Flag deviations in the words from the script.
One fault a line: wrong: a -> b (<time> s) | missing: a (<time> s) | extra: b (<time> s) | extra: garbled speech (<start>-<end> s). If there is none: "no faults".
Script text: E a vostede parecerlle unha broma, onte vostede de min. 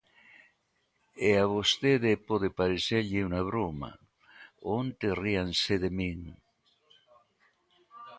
extra: pode (2.3 s)
wrong: vostede -> ríanse (5.2 s)